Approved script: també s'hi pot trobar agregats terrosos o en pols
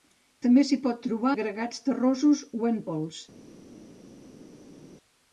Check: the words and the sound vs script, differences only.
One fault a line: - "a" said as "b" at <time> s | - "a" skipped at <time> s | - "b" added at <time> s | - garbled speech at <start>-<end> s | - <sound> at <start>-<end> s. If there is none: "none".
none